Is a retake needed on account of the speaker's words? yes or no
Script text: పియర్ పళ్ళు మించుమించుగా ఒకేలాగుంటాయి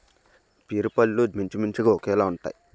no